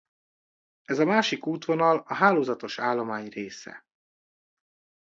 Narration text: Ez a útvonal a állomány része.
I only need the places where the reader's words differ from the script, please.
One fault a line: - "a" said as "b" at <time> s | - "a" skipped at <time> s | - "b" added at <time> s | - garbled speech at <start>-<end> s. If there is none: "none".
- "másik" added at 1.1 s
- "hálózatos" added at 2.1 s